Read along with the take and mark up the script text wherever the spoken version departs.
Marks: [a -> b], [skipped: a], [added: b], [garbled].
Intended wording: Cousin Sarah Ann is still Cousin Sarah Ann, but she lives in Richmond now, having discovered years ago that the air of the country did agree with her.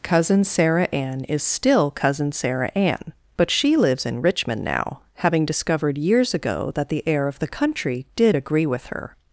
Cousin Sarah Ann is still Cousin Sarah Ann, but she lives in Richmond now, having discovered years ago that the air of the country did agree with her.